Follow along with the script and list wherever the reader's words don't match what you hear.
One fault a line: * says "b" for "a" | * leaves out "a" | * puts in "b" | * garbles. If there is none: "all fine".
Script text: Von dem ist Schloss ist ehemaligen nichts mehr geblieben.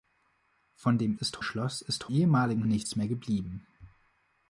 all fine